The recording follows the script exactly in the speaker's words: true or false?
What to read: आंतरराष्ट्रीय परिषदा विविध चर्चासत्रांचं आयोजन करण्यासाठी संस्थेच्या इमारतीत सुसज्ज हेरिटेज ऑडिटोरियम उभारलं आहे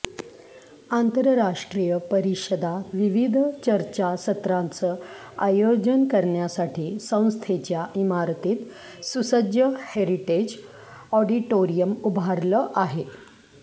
true